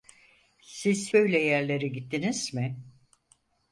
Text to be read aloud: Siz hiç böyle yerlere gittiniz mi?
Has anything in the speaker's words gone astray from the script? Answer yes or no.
yes